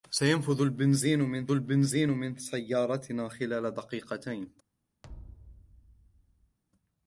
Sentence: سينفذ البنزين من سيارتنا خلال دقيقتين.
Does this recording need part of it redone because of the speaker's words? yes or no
yes